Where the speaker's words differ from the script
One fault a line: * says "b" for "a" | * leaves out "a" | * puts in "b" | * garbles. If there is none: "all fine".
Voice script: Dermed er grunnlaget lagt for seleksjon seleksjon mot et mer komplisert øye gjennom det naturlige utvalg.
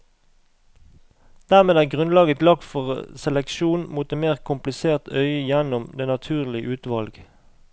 * leaves out "seleksjon"